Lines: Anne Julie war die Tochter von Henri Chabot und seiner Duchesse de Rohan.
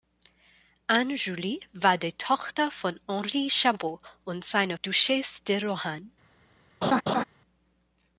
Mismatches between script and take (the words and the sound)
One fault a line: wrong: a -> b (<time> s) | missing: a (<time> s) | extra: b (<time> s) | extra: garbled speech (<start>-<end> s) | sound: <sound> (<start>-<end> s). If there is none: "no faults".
sound: laugh (6.8-7.2 s)